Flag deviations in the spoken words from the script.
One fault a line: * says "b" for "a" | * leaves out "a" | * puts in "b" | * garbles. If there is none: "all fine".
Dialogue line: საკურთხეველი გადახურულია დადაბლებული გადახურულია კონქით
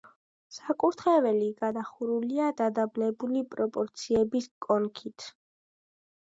* says "პროპორციების" for "გადახურულია"